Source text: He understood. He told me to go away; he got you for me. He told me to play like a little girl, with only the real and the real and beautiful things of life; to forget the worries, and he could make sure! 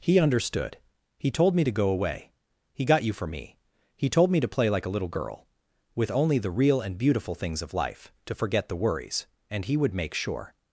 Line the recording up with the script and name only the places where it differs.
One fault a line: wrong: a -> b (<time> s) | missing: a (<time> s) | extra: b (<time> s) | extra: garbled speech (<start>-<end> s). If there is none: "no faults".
missing: the real and (7.0 s)
wrong: could -> would (9.8 s)